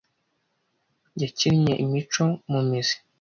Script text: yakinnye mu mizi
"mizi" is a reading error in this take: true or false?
false